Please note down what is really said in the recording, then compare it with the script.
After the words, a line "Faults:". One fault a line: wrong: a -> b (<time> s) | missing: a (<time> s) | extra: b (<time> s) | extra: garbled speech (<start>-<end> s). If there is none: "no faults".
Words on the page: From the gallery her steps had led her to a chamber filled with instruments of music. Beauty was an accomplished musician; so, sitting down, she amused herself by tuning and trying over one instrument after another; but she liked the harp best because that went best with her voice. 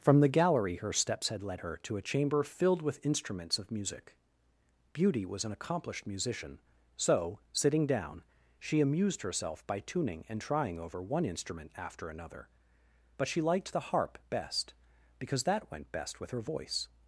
From the gallery her steps had led her to a chamber filled with instruments of music. Beauty was an accomplished musician; so, sitting down, she amused herself by tuning and trying over one instrument after another; but she liked the harp best because that went best with her voice.
Faults:
no faults